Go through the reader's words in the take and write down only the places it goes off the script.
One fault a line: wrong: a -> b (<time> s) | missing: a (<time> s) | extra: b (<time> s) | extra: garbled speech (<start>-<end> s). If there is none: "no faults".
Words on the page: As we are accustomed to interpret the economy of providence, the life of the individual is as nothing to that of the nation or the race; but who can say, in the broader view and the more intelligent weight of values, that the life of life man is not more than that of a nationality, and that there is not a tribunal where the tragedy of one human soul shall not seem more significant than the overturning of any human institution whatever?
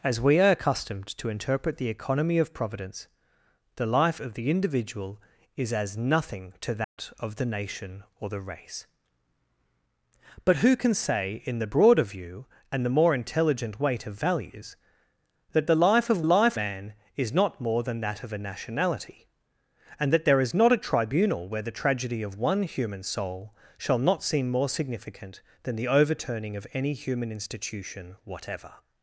no faults